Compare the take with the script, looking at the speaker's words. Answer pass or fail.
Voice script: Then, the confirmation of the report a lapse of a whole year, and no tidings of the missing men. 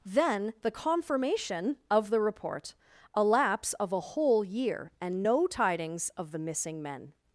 pass